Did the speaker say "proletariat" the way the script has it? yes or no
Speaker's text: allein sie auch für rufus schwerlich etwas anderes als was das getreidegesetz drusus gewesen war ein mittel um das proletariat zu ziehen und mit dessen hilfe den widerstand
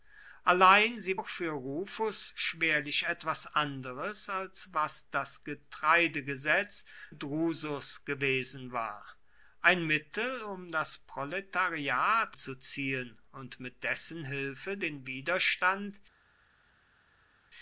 yes